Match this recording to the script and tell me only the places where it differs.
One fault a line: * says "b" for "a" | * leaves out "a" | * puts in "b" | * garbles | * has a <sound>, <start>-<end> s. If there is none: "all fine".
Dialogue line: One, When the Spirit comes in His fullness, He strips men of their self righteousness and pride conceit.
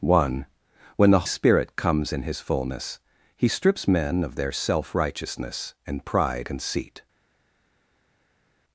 all fine